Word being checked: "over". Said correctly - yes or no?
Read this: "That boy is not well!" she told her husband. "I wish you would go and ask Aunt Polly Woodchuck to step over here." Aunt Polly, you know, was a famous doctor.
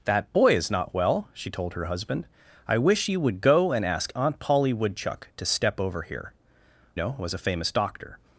yes